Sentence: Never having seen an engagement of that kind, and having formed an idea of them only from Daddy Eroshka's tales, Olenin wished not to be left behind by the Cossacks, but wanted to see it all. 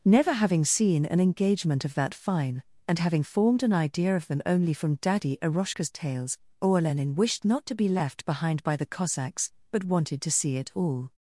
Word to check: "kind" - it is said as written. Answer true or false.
false